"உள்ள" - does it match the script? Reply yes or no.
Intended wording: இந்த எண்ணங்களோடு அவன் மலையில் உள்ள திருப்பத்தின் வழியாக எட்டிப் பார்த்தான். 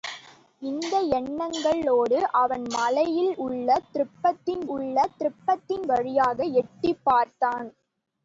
yes